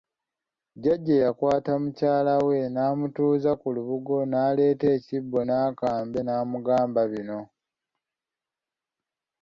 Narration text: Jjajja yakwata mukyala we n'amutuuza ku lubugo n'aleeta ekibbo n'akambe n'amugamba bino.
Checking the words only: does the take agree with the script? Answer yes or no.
yes